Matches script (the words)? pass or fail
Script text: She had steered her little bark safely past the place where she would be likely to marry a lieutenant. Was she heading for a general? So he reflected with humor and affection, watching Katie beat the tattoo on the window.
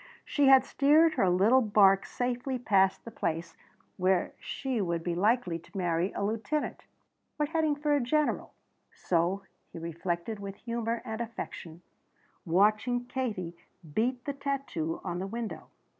fail